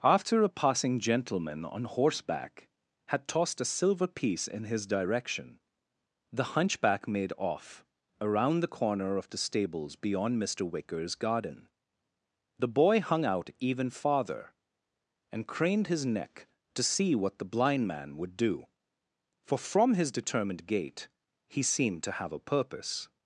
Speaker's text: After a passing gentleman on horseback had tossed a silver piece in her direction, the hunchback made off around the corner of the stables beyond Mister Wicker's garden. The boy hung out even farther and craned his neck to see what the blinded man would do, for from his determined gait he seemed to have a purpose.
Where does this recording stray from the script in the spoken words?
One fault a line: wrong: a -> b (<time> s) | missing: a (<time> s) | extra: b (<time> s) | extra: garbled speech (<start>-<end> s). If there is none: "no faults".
wrong: her -> his (4.6 s)
wrong: blinded -> blind (17.5 s)